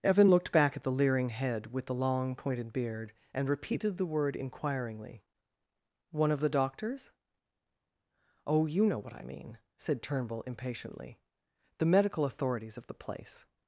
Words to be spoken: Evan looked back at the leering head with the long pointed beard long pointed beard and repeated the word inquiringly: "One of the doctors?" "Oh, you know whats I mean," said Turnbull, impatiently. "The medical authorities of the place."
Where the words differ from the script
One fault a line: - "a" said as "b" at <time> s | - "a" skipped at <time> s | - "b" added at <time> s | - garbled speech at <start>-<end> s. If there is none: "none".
- "long pointed beard" skipped at 3.1 s
- "whats" said as "what" at 9.0 s